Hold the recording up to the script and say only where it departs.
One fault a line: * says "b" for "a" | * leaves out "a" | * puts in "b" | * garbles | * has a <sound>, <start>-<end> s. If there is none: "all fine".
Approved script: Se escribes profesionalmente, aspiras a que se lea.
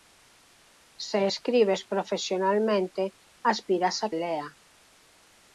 * leaves out "que se"